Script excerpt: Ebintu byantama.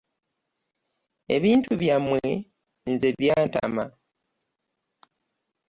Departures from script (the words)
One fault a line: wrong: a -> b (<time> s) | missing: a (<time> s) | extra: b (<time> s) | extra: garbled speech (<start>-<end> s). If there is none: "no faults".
extra: byammwe nze (1.8 s)